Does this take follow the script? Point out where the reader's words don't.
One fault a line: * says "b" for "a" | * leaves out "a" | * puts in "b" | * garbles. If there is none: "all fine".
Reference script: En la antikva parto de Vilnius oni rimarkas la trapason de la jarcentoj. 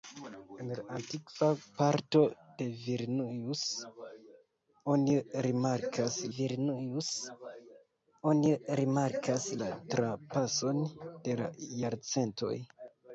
* puts in "Vilnius oni rimarkas"